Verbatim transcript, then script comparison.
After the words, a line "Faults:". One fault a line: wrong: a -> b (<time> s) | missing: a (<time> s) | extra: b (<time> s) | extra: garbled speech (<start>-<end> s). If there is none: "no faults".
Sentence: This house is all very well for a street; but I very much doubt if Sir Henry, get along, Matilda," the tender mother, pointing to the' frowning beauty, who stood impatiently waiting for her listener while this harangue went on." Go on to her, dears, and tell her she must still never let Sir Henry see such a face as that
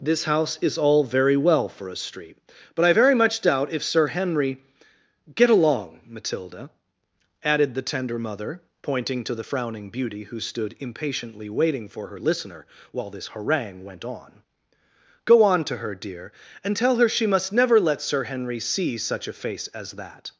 This house is all very well for a street; but I very much doubt if Sir Henry, get along, Matilda," added the tender mother, pointing to the' frowning beauty, who stood impatiently waiting for her listener while this harangue went on." Go on to her, dear, and tell her she must never let Sir Henry see such a face as that
Faults:
extra: added (7.4 s)
wrong: dears -> dear (16.0 s)
missing: still (17.5 s)